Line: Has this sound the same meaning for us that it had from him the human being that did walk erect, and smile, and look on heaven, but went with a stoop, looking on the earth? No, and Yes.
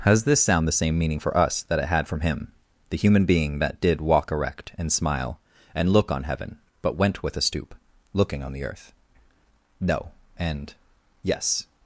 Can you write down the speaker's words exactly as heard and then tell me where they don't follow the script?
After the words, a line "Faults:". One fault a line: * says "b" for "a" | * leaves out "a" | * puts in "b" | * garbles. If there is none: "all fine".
Has this sound the same meaning for us that it had from him the human being that did walk erect, and smile, and look on heaven, but went with a stoop, looking on the earth? No, and Yes.
Faults:
all fine